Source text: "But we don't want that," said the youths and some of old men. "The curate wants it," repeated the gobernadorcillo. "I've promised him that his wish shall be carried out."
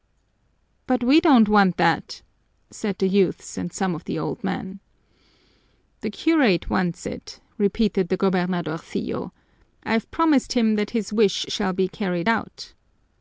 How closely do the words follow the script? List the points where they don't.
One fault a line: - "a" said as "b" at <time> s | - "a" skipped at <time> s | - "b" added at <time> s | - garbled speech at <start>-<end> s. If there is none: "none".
- "the" added at 4.0 s